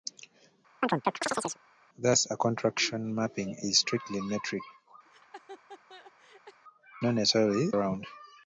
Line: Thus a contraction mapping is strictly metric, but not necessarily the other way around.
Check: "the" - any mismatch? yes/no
yes